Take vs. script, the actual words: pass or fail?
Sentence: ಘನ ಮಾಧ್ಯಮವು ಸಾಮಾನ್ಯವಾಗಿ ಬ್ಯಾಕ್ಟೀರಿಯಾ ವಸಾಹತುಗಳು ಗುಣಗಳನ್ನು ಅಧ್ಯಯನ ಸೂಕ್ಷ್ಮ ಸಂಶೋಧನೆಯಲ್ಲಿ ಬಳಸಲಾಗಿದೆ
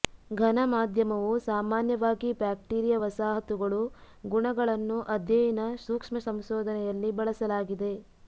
pass